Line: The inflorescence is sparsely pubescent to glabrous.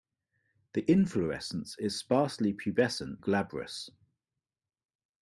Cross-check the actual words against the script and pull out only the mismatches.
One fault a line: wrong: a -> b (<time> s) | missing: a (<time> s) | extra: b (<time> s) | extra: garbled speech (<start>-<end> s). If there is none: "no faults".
missing: to (3.2 s)